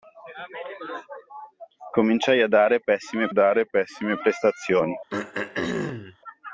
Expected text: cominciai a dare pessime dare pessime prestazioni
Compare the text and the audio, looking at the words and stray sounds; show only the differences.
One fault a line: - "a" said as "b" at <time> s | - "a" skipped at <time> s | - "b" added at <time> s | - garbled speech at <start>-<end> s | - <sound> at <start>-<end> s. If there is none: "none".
- throat clearing at 5.1-6.2 s